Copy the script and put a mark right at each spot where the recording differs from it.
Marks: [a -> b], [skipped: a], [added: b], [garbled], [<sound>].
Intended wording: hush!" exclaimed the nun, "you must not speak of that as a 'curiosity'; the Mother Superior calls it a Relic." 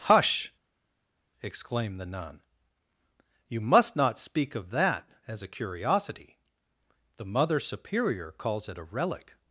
hush!" exclaimed the nun, "you must not speak of that as a 'curiosity'; the Mother Superior calls it a Relic."